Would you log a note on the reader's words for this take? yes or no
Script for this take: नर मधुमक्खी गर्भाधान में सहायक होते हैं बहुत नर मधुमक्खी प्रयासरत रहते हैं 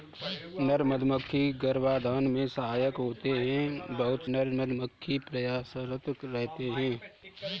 no